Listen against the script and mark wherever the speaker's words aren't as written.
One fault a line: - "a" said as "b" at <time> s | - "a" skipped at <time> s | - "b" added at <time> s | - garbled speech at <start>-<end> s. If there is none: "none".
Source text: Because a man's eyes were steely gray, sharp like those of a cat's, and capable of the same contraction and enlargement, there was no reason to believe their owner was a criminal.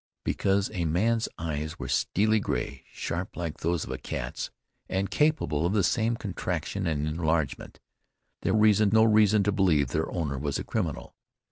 - "was" said as "reason" at 8.5 s